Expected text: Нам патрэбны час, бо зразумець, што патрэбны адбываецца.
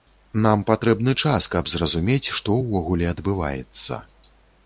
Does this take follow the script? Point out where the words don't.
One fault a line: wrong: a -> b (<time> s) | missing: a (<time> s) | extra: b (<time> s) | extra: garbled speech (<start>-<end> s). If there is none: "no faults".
wrong: бо -> каб (1.6 s)
wrong: патрэбны -> ўвогуле (2.6 s)